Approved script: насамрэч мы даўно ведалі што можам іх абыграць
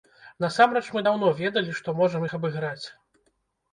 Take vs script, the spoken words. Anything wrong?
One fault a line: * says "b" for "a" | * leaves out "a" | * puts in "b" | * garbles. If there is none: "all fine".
all fine